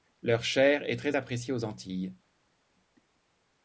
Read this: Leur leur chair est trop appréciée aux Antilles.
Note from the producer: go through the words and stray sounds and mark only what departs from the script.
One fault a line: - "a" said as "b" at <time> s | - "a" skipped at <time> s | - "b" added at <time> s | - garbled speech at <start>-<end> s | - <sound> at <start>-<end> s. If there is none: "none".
- "leur" skipped at 0.4 s
- "trop" said as "très" at 0.9 s